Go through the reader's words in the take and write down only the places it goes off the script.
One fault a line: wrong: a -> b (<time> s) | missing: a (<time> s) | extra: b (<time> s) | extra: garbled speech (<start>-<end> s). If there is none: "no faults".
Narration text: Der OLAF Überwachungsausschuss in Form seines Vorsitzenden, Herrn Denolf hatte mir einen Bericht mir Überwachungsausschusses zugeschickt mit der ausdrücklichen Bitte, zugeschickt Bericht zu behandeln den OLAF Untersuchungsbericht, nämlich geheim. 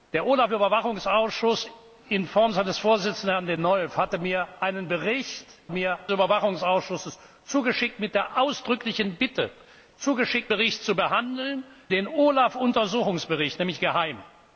no faults